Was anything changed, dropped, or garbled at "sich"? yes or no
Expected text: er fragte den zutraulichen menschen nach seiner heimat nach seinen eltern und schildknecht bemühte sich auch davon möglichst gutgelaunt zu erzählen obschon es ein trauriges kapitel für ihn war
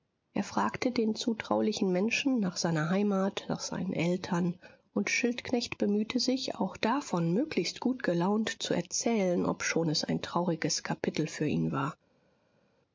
no